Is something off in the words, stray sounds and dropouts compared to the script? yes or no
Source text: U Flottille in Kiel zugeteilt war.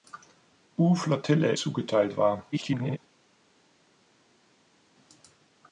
yes